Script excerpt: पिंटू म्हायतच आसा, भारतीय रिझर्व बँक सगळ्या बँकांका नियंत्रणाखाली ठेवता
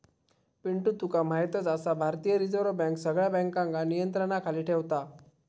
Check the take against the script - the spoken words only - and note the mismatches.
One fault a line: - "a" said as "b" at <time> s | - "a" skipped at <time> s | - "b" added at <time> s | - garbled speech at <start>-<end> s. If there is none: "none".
- "तुका" added at 1.0 s